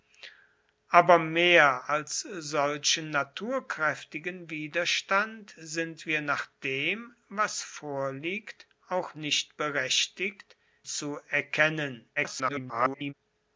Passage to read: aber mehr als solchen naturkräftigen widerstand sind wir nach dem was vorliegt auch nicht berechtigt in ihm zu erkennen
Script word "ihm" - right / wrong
wrong